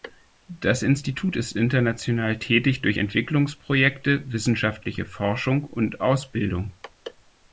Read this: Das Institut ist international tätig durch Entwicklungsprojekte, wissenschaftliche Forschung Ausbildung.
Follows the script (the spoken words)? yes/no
no